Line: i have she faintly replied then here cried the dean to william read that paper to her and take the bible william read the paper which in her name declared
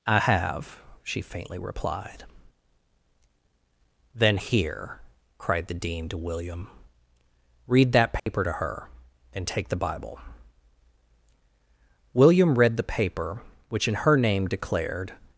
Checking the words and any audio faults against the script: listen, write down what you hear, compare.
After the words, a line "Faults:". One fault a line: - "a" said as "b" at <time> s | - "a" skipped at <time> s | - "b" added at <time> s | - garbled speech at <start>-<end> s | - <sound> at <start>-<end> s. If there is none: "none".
i have she faintly replied then here cried the dean to william read that paper to her and take the bible william read the paper which in her name declared
Faults:
- dropout at 8.2-8.3 s